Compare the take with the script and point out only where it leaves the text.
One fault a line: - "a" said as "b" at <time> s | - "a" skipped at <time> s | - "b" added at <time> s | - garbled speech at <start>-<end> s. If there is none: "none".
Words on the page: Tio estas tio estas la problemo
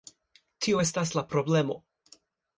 - "tio estas" skipped at 1.1 s